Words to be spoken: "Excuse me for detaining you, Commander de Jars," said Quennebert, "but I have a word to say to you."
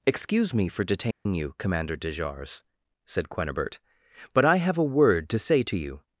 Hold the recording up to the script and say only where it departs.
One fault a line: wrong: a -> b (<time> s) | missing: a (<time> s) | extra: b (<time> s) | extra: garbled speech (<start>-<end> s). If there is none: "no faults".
no faults